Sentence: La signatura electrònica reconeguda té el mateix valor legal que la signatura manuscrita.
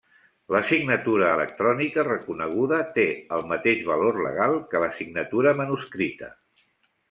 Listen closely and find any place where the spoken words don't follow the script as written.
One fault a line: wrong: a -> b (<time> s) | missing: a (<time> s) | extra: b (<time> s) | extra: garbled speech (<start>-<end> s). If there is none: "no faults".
no faults